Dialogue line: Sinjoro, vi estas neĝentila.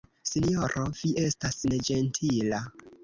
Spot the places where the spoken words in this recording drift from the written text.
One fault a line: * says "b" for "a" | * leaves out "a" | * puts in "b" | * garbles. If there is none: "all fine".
all fine